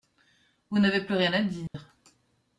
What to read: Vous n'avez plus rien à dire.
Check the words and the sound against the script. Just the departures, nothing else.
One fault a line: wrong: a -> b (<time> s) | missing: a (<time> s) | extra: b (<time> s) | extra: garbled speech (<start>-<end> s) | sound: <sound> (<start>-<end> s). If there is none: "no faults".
sound: dropout (1.7-1.7 s)